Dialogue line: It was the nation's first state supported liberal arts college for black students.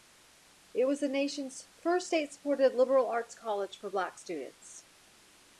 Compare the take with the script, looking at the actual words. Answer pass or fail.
pass